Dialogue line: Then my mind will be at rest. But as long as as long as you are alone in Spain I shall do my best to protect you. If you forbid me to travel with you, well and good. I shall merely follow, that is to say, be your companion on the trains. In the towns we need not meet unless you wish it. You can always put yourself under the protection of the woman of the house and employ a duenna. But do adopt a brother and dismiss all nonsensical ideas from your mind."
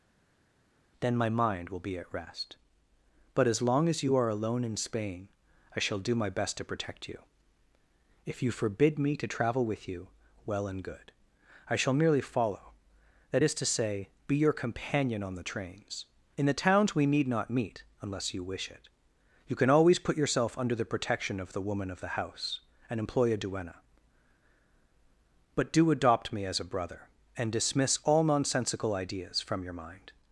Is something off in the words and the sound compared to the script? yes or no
yes